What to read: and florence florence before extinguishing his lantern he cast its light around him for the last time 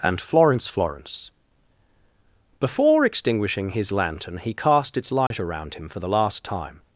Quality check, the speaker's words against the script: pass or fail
pass